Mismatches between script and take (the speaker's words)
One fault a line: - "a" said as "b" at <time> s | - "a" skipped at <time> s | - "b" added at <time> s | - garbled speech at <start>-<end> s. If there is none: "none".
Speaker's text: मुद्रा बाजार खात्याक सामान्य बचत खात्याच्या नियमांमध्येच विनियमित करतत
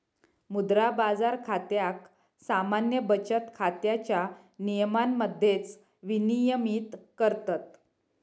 none